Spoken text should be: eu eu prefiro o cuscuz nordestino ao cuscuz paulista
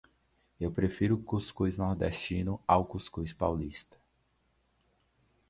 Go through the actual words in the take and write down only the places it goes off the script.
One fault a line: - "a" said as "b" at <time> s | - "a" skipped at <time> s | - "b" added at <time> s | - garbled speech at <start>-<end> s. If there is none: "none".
- "eu" skipped at 0.7 s